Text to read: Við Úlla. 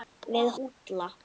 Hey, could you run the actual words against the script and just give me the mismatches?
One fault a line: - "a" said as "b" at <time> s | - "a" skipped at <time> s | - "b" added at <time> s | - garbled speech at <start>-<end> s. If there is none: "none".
none